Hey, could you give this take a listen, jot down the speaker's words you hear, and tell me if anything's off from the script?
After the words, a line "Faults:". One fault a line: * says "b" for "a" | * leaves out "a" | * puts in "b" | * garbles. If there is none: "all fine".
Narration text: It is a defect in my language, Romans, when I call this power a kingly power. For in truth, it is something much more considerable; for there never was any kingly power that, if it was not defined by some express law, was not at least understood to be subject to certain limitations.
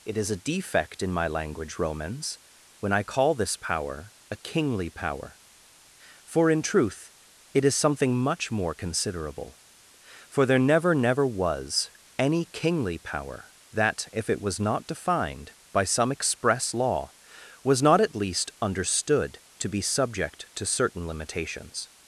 It is a defect in my language, Romans, when I call this power a kingly power. For in truth, it is something much more considerable; for there never never was any kingly power that, if it was not defined by some express law, was not at least understood to be subject to certain limitations.
Faults:
* puts in "never"